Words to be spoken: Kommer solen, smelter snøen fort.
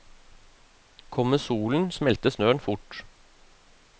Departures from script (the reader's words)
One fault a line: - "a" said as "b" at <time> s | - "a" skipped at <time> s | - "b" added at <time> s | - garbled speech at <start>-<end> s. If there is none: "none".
none